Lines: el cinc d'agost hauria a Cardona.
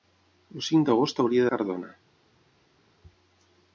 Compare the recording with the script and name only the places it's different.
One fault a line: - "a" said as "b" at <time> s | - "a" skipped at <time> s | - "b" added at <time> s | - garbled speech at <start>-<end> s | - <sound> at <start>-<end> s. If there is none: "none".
none